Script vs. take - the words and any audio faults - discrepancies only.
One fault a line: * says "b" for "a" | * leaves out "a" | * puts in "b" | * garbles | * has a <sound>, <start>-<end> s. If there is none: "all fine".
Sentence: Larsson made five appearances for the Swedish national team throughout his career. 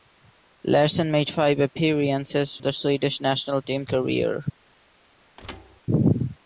* leaves out "for"
* leaves out "throughout his"
* has a thud, 5.4-5.8 s